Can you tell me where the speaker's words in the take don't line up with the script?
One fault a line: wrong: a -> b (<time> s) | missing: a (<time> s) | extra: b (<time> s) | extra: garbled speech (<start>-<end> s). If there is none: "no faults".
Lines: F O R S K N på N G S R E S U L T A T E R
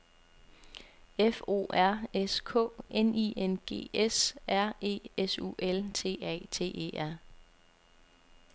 wrong: på -> I (3.1 s)